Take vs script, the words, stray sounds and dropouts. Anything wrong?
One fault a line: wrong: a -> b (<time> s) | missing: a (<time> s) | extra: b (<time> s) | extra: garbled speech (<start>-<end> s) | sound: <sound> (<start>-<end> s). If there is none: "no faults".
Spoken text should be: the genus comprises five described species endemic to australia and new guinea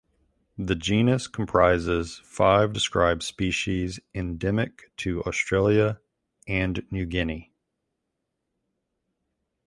no faults